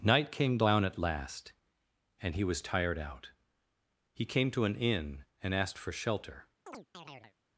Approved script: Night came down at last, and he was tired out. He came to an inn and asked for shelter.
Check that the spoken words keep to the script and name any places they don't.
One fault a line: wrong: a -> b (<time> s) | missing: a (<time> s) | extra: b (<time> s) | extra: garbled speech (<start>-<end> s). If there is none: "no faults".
no faults